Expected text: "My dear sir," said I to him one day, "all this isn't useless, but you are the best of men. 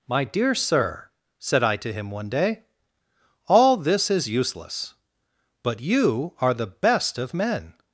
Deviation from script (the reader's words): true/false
true